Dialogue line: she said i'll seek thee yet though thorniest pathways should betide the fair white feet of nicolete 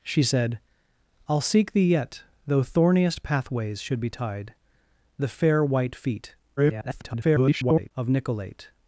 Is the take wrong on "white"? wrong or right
right